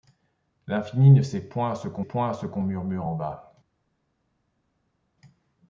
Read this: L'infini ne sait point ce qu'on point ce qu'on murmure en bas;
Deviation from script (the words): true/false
false